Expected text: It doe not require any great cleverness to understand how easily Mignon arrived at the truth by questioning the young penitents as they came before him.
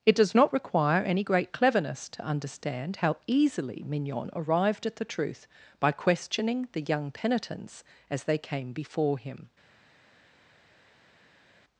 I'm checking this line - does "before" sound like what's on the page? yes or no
yes